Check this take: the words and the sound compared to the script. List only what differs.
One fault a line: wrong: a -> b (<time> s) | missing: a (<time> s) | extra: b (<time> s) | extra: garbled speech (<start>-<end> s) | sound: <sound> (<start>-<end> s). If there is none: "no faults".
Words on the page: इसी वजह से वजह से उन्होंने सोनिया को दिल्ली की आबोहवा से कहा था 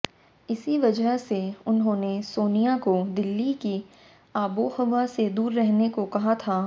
missing: वजह से (1.4 s)
extra: दूर रहने को (5.3 s)